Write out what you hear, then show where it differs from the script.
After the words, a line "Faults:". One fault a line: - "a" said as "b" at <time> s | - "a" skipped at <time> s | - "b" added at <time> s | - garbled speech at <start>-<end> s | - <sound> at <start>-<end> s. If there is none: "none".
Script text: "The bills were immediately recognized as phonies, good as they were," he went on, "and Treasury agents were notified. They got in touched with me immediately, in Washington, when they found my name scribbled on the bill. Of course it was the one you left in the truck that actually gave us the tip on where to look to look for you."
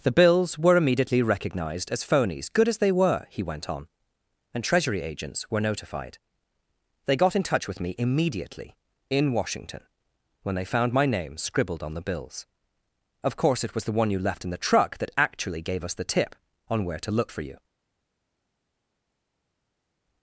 "The bills were immediately recognized as phonies, good as they were," he went on, "and Treasury agents were notified. They got in touch with me immediately, in Washington, when they found my name scribbled on the bills. Of course it was the one you left in the truck that actually gave us the tip on where to look for you."
Faults:
- "touched" said as "touch" at 7.4 s
- "bill" said as "bills" at 12.1 s
- "to look" skipped at 17.3 s